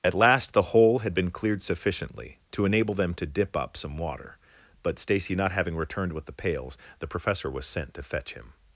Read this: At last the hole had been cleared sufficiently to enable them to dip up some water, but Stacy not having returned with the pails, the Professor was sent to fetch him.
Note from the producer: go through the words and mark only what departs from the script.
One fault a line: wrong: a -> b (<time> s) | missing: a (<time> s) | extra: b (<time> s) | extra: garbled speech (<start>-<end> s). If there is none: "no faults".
no faults